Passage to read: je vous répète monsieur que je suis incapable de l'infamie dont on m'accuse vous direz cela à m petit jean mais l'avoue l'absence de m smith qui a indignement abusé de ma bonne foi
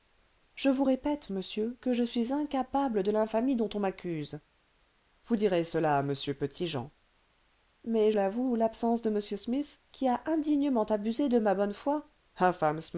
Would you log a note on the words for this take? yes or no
no